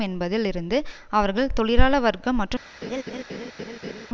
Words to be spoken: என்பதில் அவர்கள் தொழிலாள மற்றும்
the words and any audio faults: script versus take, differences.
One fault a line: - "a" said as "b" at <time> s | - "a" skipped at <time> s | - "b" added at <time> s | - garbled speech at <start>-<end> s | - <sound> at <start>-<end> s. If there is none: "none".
- "இருந்து" added at 0.5 s
- "வர்க்கம்" added at 2.0 s
- laugh at 2.8-4.1 s